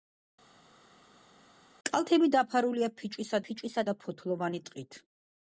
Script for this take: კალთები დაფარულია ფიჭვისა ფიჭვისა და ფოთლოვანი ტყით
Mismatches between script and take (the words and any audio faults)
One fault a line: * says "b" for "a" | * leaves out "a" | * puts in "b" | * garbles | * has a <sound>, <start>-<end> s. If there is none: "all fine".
all fine